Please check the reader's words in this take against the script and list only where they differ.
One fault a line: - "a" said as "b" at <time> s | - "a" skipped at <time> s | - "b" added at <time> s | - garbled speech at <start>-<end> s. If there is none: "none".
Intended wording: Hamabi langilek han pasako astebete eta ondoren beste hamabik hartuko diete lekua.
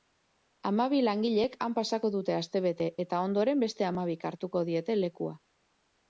- "dute" added at 2.1 s